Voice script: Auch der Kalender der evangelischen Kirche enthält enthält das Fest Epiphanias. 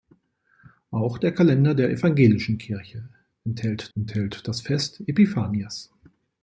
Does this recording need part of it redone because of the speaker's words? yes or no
no